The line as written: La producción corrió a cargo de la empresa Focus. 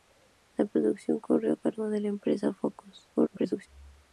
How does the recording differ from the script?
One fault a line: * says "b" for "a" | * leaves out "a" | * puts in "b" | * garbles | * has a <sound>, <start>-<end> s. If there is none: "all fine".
* garbles